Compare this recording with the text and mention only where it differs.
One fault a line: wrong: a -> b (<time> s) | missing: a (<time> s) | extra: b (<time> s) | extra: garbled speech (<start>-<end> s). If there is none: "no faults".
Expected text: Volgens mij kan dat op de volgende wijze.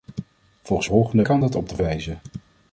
wrong: mij -> volgende (0.8 s)
missing: volgende (1.8 s)